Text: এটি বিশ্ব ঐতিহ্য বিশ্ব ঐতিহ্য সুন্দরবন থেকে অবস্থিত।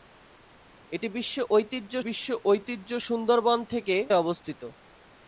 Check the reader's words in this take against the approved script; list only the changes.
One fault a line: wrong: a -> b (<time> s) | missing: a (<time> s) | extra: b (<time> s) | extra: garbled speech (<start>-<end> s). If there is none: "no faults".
no faults